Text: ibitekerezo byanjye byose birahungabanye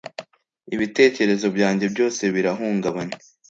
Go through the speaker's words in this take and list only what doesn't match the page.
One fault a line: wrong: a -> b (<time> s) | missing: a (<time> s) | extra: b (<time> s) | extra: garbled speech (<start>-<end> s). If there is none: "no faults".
no faults